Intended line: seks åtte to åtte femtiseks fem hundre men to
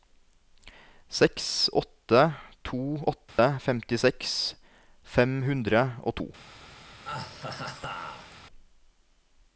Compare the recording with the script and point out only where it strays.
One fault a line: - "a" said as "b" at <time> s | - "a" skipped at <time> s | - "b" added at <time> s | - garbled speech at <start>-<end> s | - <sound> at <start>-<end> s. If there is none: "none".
- dropout at 3.3-3.4 s
- "men" said as "og" at 6.0 s
- laugh at 7.0-8.4 s